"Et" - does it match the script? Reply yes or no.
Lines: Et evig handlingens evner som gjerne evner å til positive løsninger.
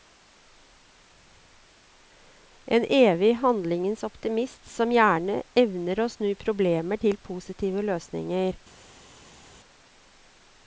no